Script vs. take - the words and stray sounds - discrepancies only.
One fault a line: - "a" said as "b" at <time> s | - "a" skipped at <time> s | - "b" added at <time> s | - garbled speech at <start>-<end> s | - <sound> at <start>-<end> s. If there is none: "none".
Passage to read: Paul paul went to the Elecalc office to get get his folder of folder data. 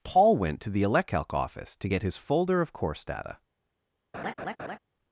- "paul" skipped at 0.3 s
- "get" skipped at 2.0 s
- "folder" said as "course" at 2.7 s
- laugh at 4.1-4.8 s